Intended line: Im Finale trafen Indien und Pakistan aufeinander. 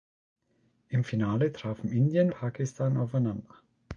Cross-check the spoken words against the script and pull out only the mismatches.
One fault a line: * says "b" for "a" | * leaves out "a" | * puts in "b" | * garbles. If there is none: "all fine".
* leaves out "und"